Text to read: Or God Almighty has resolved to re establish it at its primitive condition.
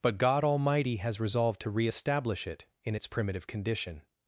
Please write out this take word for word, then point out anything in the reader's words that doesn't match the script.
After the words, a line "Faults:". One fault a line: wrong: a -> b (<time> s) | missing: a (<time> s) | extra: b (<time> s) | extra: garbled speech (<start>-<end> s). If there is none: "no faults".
But God Almighty has resolved to re establish it in its primitive condition.
Faults:
wrong: Or -> But (0.0 s)
wrong: at -> in (2.8 s)